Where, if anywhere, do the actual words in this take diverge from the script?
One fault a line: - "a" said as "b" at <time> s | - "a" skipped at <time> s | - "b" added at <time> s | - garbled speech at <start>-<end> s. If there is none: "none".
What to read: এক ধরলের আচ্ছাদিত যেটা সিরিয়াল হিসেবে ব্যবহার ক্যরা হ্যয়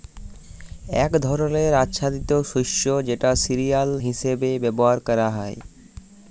- "শস্য" added at 2.5 s